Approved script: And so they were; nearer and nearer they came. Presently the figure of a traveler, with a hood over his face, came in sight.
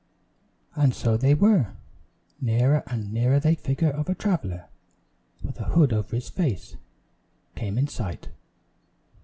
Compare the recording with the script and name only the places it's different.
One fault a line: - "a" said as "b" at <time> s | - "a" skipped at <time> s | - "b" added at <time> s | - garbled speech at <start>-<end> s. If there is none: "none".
- "came Presently the" skipped at 3.5 s